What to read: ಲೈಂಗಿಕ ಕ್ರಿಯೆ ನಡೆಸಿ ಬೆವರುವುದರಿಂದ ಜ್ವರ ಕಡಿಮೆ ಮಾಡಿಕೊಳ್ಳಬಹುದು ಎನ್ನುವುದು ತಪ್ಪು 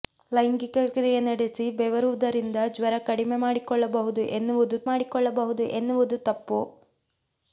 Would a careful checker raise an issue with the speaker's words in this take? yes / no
yes